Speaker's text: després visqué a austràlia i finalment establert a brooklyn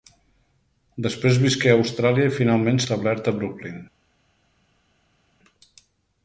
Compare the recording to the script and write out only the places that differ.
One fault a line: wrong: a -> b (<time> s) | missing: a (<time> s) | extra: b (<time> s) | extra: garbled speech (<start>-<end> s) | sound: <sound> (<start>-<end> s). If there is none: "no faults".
no faults